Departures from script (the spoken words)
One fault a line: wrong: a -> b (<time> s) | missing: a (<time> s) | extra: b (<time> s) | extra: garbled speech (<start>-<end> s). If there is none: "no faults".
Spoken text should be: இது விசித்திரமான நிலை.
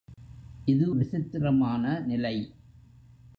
no faults